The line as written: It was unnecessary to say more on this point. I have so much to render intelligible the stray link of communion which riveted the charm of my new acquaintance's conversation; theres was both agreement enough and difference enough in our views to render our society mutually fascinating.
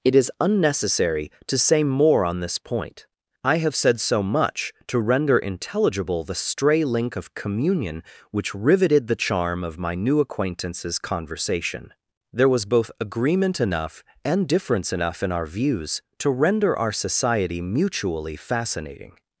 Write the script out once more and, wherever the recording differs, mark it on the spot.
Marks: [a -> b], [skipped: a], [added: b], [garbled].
It [was -> is] unnecessary to say more on this point. I have [added: said] so much to render intelligible the stray link of communion which riveted the charm of my new acquaintance's conversation; [theres -> there] was both agreement enough and difference enough in our views to render our society mutually fascinating.